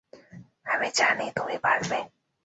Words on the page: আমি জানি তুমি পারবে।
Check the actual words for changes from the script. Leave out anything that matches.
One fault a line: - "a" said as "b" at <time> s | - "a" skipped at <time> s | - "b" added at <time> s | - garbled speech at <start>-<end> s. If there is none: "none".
none